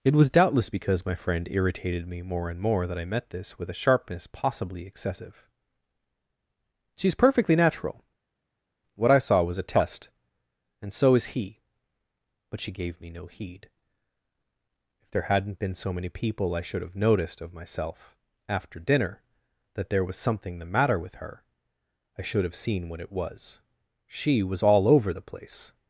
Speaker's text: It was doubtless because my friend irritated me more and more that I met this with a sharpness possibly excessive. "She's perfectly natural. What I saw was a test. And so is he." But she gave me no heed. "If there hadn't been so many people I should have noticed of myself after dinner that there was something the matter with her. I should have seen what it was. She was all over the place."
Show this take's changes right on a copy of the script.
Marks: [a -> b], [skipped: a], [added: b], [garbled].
It was doubtless because my friend irritated me more and more that I met this with a sharpness possibly excessive. "She's perfectly natural. What I saw was a test. And so is he." But she gave me no heed. "If there hadn't been so many people I should have noticed of myself after dinner that there was something the matter with her. I should have seen what it was. She was all over the place."